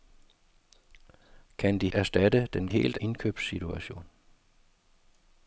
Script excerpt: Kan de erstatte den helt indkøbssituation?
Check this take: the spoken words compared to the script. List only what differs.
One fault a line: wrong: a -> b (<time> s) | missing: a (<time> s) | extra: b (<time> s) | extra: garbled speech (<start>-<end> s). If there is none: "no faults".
no faults